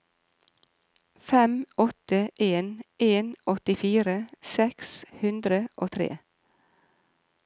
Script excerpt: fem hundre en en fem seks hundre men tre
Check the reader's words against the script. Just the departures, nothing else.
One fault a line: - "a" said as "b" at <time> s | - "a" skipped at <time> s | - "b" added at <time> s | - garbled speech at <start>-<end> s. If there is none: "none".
- "hundre" said as "åtte" at 1.8 s
- "fem" said as "åttifire" at 3.5 s
- "men" said as "og" at 5.8 s